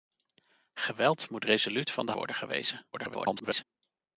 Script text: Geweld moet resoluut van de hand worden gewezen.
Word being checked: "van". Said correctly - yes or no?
yes